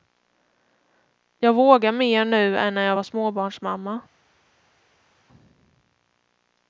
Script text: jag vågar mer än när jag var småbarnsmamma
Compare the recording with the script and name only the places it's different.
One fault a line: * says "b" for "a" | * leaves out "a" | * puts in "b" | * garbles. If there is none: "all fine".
* puts in "nu"